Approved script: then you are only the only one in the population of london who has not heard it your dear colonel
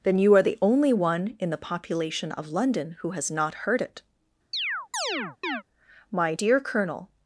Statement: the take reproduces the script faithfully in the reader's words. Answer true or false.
false